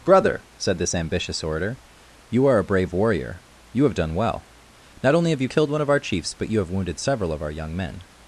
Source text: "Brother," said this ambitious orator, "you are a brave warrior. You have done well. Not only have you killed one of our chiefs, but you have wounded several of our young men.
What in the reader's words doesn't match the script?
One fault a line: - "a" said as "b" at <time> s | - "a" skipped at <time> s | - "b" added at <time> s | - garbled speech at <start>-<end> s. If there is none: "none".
none